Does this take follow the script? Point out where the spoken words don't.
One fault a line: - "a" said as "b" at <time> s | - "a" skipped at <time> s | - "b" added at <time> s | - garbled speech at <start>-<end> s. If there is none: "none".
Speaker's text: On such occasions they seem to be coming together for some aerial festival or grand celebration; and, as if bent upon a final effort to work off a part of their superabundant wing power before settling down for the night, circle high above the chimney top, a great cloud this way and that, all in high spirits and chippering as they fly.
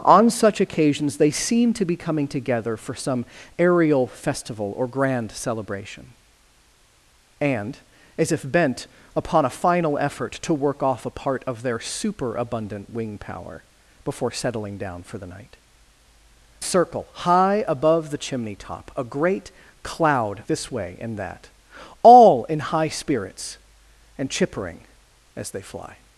none